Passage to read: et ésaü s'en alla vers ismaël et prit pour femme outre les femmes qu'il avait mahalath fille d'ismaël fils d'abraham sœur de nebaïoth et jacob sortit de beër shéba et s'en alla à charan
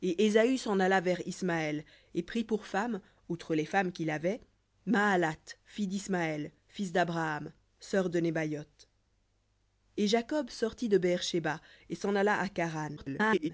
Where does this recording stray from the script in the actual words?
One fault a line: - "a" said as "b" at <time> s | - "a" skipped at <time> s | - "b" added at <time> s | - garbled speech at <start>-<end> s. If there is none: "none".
- garbled speech at 13.0-13.5 s